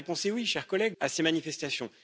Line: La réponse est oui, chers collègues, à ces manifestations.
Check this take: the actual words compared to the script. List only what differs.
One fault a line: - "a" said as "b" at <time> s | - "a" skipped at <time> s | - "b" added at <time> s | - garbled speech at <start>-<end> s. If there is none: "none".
none